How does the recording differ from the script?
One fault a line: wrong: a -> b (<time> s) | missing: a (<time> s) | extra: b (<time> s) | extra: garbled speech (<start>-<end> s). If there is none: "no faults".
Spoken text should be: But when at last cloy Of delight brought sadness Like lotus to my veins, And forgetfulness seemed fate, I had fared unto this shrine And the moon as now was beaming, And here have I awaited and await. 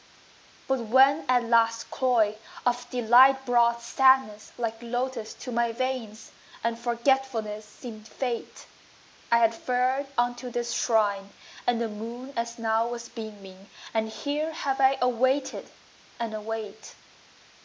no faults